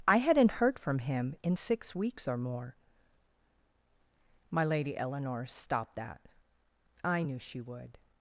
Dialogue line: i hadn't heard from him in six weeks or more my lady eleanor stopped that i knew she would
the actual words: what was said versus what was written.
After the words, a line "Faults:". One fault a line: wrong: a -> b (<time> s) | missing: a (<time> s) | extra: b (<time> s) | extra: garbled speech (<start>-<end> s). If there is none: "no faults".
i hadn't heard from him in six weeks or more my lady eleanor stopped that i knew she would
Faults:
no faults